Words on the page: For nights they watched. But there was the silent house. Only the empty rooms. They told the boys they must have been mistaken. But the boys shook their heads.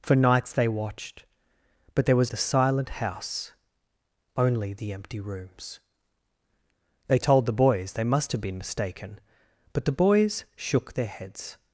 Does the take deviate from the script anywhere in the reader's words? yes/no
no